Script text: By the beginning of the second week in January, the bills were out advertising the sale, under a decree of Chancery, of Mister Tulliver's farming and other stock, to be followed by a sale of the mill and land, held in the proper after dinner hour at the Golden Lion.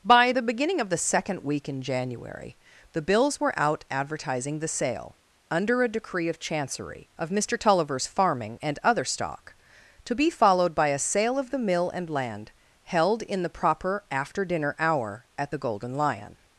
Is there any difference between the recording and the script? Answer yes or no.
no